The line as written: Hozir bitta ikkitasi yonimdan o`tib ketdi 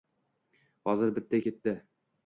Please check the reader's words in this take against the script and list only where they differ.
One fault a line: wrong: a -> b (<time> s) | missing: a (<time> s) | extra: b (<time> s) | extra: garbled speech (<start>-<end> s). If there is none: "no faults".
missing: ikkitasi yonimdan o`tib (1.4 s)